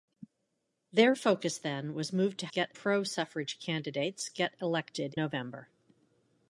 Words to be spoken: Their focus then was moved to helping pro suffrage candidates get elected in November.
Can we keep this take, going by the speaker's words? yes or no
no